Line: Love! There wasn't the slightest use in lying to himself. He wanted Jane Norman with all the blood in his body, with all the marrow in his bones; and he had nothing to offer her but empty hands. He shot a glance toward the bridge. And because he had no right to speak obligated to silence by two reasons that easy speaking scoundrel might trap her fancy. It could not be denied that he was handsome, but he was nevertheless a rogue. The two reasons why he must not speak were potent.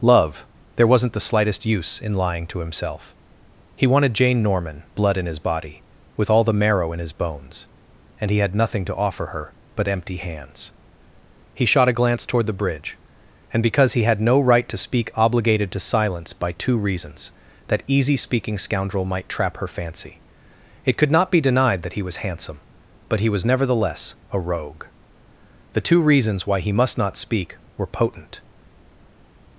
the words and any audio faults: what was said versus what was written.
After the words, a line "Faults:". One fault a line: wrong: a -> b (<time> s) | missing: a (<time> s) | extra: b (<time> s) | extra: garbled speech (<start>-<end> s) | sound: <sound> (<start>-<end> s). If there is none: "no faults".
Love! There wasn't the slightest use in lying to himself. He wanted Jane Norman blood in his body, with all the marrow in his bones; and he had nothing to offer her but empty hands. He shot a glance toward the bridge. And because he had no right to speak obligated to silence by two reasons that easy speaking scoundrel might trap her fancy. It could not be denied that he was handsome, but he was nevertheless a rogue. The two reasons why he must not speak were potent.
Faults:
missing: with all the (4.8 s)